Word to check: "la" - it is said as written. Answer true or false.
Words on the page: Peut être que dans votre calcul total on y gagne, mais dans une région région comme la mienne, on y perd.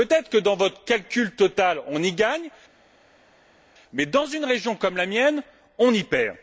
true